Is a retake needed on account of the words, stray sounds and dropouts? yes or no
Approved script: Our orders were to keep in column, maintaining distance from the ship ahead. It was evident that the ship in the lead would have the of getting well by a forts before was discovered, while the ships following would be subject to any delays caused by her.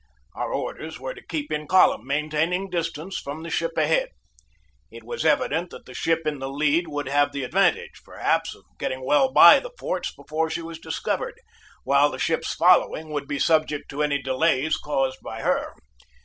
yes